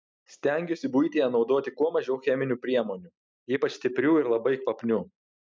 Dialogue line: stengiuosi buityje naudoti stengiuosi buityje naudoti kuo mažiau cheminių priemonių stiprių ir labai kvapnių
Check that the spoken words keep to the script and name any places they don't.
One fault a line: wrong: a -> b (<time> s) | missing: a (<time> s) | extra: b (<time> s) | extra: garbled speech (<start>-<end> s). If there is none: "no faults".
missing: stengiuosi buityje naudoti (1.7 s)
extra: ypač (3.6 s)